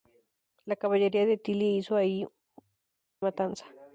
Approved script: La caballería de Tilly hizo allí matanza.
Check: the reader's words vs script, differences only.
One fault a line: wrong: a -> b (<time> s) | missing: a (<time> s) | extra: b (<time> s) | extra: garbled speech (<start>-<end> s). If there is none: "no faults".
no faults